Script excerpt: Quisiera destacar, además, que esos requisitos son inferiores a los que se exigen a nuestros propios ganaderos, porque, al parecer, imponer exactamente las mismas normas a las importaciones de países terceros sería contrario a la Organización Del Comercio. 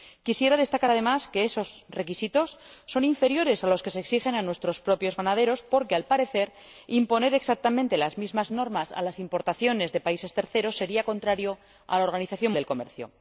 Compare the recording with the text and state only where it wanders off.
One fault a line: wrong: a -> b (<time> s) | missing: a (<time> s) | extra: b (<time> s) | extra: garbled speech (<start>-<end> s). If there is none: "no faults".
no faults